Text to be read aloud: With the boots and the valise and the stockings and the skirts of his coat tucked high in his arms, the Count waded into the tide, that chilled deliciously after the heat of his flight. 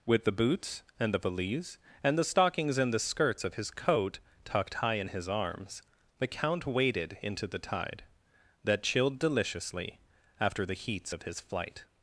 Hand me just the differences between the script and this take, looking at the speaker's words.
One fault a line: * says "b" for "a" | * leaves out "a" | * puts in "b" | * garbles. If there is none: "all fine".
* says "heats" for "heat"